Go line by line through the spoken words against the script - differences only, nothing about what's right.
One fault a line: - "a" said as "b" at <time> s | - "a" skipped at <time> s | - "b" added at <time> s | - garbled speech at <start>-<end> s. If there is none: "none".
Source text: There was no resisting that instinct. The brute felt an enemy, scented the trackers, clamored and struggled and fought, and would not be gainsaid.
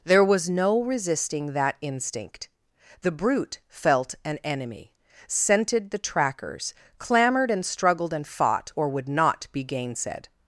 - "and" said as "or" at 8.7 s